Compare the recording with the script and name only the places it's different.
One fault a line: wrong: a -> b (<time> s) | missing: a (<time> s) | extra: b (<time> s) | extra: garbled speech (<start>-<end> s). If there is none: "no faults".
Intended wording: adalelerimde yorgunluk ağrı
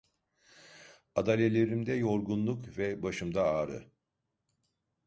extra: ve başımda (2.8 s)